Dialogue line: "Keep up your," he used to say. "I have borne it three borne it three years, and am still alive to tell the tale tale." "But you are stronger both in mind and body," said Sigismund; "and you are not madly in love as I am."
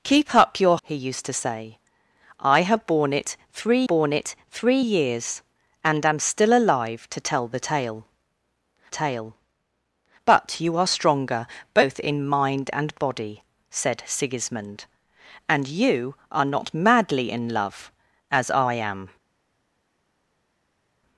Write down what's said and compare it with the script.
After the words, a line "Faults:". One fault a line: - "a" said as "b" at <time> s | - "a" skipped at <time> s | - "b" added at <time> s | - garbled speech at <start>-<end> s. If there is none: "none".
"Keep up your," he used to say. "I have borne it three borne it three years, and am still alive to tell the tale tale." "But you are stronger both in mind and body," said Sigismund; "and you are not madly in love as I am."
Faults:
none